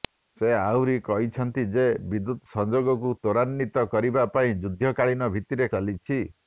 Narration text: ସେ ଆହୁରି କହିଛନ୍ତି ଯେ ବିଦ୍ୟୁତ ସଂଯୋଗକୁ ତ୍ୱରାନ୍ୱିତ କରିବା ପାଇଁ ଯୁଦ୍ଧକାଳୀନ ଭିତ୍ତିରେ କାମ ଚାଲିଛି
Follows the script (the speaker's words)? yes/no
no